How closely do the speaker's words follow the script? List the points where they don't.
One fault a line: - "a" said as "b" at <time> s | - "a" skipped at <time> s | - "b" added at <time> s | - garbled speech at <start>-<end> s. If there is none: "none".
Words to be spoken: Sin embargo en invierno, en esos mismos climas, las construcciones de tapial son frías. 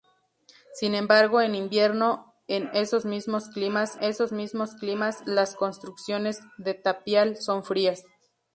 - "esos mismos climas" added at 4.0 s